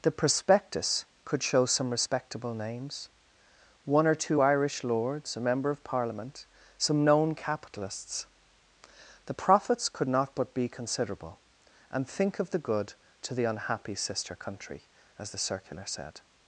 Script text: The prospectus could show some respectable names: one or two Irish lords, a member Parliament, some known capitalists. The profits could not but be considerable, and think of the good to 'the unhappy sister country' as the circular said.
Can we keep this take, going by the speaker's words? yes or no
no